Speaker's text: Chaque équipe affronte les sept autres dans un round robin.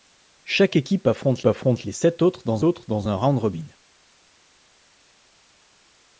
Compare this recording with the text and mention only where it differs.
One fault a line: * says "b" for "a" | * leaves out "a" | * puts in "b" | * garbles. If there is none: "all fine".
* puts in "affronte"
* puts in "autres dans"